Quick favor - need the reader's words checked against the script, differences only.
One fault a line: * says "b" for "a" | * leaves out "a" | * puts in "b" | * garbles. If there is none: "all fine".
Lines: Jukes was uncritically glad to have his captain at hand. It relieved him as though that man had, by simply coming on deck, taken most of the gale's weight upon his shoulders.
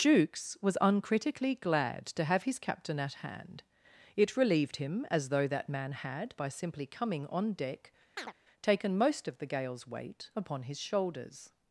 all fine